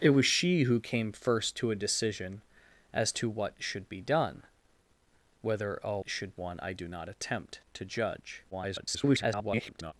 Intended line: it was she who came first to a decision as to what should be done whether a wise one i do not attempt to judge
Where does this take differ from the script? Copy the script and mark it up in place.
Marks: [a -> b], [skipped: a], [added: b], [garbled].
it was she who came first to a decision as to what should be done whether a [wise -> should] one i do not attempt to judge [garbled]